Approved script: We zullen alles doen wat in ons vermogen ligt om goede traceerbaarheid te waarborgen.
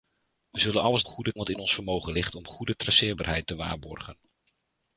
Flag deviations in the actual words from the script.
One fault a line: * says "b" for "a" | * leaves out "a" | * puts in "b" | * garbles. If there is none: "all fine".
* says "goede" for "doen"